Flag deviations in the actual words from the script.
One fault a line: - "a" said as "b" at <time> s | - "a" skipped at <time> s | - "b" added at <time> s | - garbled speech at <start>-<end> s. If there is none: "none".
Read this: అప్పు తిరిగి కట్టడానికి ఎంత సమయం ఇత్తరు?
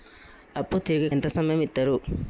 - "కట్టడానికి" skipped at 1.1 s